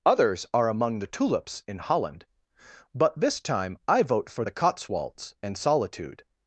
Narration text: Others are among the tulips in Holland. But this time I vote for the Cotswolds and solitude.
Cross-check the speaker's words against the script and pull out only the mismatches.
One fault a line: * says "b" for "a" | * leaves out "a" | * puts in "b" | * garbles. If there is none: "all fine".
all fine